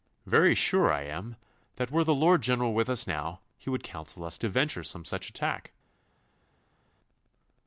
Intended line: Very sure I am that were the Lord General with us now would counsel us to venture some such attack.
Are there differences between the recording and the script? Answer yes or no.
yes